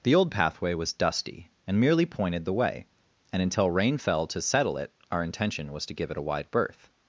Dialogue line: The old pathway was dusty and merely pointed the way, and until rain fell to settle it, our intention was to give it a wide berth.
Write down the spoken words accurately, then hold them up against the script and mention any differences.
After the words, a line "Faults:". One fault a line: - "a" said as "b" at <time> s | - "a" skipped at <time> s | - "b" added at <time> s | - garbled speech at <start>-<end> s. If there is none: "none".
The old pathway was dusty and merely pointed the way, and until rain fell to settle it, our intention was to give it a wide berth.
Faults:
none